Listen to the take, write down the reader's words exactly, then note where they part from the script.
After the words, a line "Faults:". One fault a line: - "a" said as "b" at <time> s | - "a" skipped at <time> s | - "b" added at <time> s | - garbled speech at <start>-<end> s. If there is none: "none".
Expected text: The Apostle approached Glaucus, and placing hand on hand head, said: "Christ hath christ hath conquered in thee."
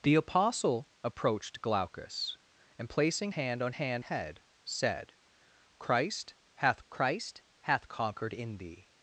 The Apostle approached Glaucus, and placing hand on hand head, said: "Christ hath christ hath conquered in thee."
Faults:
none